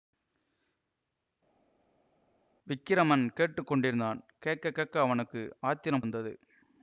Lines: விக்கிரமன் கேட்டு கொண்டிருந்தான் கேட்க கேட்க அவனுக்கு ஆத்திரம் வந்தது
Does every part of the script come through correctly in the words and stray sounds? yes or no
yes